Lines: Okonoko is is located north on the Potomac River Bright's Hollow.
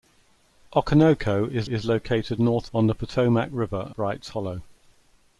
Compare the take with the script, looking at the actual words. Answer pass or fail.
pass